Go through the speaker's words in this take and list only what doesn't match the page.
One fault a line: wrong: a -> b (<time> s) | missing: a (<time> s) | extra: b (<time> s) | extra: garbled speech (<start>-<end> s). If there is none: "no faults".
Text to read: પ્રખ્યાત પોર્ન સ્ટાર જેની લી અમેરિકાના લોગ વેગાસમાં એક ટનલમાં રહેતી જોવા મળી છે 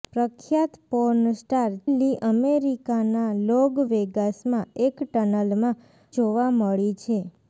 missing: જેની (1.7 s)
missing: રહેતી (5.8 s)